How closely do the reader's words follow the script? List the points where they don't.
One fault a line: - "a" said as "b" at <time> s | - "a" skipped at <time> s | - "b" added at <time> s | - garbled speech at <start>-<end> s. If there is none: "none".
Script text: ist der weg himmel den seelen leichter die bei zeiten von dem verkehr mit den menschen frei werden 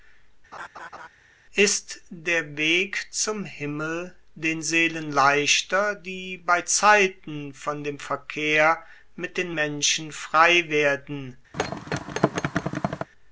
- "zum" added at 3.1 s